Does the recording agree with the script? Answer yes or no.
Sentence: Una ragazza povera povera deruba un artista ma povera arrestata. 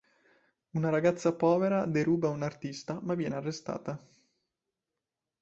no